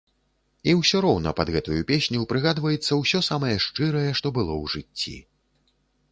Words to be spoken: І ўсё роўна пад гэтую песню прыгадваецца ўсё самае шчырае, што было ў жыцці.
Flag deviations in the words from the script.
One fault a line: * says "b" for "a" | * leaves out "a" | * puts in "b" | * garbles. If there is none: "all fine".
all fine